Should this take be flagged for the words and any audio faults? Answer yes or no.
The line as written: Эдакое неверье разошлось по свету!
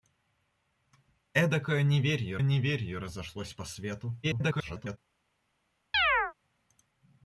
yes